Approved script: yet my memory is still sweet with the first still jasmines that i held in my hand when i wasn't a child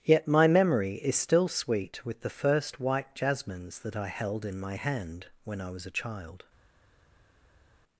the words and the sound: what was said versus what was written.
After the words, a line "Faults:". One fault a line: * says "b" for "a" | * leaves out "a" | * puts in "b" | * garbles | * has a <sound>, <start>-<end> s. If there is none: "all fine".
yet my memory is still sweet with the first white jasmines that i held in my hand when i was a child
Faults:
* says "white" for "still"
* says "was" for "wasn't"